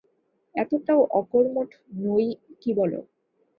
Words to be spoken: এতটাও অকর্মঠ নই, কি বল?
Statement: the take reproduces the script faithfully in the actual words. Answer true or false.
true